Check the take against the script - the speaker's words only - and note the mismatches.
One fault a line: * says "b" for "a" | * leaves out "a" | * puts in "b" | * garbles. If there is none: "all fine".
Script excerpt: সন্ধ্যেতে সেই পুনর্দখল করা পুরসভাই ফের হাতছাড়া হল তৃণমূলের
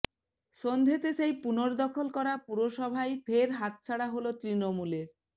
all fine